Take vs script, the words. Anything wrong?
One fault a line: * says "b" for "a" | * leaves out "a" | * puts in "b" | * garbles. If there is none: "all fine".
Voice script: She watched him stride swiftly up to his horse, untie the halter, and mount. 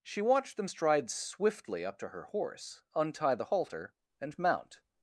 * says "them" for "him"
* says "her" for "his"